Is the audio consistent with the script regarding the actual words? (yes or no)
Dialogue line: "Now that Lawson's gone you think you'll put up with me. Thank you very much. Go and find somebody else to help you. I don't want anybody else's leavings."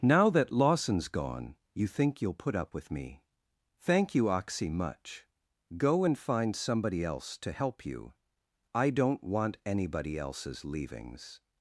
no